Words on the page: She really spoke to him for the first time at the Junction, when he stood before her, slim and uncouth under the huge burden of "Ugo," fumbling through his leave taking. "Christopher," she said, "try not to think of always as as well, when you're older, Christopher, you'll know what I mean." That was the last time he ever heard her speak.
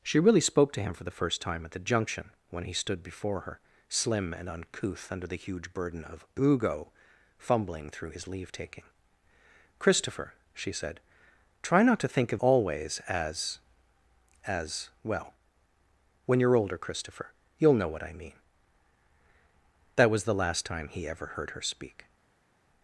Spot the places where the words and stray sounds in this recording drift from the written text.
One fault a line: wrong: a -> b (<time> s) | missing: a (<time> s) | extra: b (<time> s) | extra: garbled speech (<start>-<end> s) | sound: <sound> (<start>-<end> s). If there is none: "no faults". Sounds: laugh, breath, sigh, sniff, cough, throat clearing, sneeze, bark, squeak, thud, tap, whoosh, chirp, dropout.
no faults